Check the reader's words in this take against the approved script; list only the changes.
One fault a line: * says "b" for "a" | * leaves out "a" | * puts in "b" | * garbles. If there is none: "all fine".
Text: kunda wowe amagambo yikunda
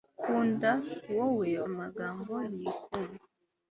all fine